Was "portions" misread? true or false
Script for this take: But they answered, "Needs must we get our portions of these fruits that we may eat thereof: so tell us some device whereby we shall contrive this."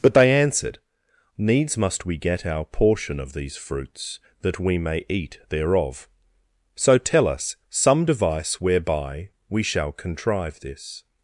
true